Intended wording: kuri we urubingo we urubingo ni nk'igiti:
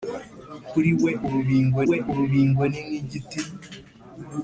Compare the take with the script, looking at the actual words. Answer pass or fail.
pass